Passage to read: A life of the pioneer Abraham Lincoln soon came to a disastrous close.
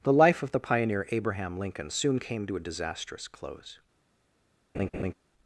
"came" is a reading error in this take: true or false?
false